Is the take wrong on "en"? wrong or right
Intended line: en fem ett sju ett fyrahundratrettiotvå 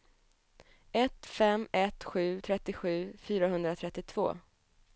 wrong